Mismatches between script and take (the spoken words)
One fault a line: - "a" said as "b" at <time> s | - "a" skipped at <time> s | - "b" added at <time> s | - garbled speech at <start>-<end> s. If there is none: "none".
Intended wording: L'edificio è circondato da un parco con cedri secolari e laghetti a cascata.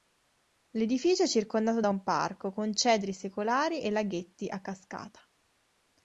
none